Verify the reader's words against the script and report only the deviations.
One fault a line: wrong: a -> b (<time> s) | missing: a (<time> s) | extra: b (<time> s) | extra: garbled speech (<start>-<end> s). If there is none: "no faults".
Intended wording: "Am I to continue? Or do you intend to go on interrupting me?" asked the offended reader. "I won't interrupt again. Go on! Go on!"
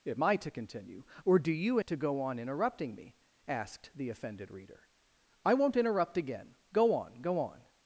missing: intend (1.8 s)